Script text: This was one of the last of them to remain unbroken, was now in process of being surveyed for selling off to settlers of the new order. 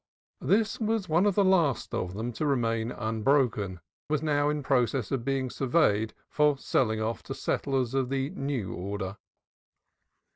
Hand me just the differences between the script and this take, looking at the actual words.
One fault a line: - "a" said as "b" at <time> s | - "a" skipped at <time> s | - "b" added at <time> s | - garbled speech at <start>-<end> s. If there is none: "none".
none